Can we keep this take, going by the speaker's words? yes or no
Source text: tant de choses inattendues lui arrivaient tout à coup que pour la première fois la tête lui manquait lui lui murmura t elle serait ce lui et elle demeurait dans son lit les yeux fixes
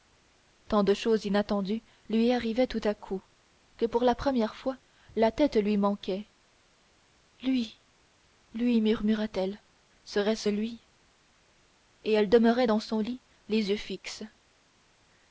yes